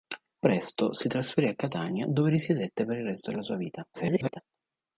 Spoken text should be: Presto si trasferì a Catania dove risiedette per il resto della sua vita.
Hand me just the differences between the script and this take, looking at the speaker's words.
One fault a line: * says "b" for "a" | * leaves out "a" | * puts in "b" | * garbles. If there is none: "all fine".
* garbles